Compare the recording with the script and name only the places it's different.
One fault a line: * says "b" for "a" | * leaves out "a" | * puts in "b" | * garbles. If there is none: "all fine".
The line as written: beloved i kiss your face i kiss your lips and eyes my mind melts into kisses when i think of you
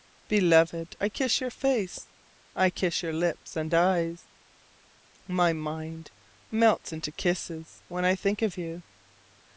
all fine